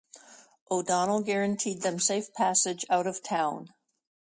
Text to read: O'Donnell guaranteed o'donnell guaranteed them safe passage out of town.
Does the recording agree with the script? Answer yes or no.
no